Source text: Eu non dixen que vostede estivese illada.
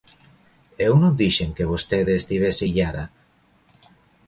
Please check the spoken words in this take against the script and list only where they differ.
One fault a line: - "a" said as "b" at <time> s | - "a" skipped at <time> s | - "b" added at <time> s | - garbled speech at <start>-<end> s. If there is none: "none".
none